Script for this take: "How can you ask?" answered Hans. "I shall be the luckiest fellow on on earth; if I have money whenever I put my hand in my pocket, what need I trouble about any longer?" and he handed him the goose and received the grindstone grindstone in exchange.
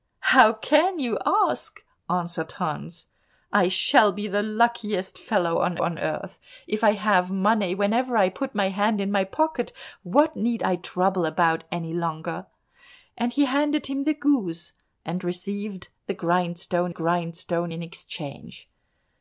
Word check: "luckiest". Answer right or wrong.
right